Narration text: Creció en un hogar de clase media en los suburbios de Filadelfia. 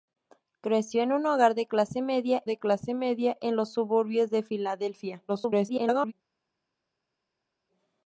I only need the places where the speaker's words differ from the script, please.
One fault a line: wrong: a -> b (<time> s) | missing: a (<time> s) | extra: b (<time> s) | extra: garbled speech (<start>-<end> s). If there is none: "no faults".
extra: de clase media (2.4 s)
extra: garbled speech (5.3-6.1 s)